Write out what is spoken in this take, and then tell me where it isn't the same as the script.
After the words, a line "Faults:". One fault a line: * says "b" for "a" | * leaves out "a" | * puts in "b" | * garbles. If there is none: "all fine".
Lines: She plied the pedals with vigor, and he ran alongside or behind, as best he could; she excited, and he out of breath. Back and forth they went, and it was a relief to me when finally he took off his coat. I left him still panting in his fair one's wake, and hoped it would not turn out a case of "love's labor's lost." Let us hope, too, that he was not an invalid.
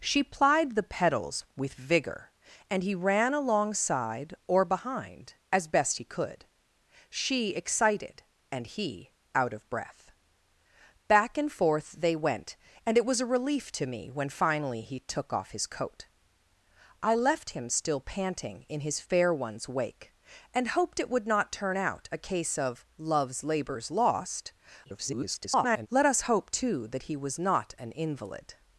She plied the pedals with vigor, and he ran alongside or behind, as best he could; she excited, and he out of breath. Back and forth they went, and it was a relief to me when finally he took off his coat. I left him still panting in his fair one's wake, and hoped it would not turn out a case of "love's labor's lost." [garbled] Let us hope, too, that he was not an invalid.
Faults:
* garbles